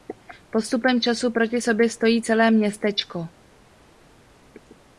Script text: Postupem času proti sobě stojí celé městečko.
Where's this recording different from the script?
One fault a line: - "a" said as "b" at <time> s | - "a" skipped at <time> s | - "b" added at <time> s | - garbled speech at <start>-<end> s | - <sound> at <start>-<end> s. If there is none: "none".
none